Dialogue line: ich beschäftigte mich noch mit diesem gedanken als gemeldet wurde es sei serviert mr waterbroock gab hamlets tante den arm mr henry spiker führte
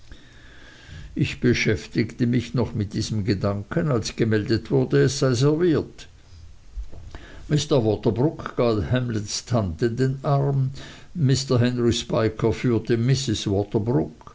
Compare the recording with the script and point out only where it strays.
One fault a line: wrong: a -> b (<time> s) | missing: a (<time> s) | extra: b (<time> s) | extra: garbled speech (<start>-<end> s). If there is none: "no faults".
no faults